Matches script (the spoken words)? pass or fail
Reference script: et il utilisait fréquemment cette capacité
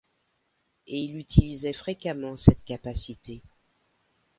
pass